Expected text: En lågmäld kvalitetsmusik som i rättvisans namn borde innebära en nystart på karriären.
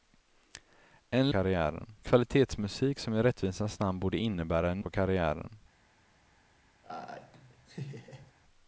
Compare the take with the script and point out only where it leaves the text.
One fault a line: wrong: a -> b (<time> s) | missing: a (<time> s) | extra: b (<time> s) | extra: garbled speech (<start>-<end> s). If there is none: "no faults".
wrong: lågmäld -> karriären (1.3 s)
missing: nystart (4.8 s)